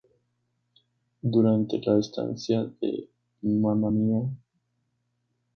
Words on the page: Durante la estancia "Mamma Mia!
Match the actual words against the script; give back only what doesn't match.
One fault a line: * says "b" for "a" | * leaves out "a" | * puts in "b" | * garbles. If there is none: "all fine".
* puts in "de"